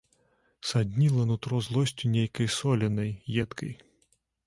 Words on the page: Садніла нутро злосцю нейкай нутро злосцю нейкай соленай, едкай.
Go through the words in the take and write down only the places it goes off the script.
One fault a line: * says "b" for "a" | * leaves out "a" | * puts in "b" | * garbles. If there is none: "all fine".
* leaves out "нутро злосцю нейкай"